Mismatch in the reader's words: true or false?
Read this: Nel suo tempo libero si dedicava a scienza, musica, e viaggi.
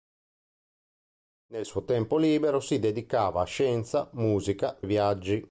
false